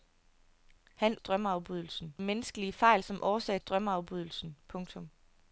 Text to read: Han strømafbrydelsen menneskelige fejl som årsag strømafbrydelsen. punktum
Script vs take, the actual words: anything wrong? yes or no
no